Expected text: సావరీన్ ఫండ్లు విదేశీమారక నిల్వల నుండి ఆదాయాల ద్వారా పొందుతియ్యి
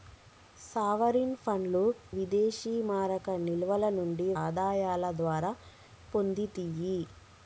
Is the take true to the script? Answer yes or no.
yes